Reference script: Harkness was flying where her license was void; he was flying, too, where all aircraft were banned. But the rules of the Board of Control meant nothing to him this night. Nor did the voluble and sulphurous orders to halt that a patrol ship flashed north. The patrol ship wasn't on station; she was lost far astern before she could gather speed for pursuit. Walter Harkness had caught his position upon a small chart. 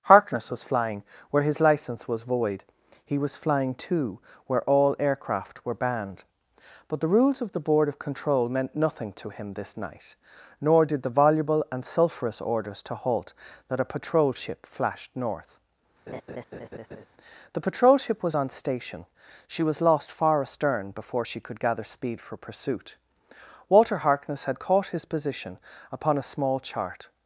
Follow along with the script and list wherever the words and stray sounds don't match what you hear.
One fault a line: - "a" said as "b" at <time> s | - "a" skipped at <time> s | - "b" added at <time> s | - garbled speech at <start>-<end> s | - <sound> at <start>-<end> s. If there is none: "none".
- "her" said as "his" at 1.4 s
- laugh at 16.1-17.1 s
- "wasn't" said as "was" at 18.2 s